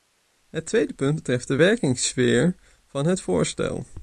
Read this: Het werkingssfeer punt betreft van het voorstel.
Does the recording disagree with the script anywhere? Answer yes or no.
yes